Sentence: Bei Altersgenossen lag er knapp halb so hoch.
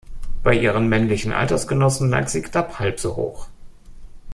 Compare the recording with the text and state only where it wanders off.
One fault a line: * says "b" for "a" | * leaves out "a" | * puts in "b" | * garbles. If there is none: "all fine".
* puts in "ihren männlichen"
* says "sie" for "er"